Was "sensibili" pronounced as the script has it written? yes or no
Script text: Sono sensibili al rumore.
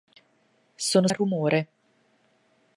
no